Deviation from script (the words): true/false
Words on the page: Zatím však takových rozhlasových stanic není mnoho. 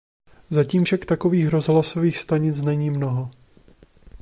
false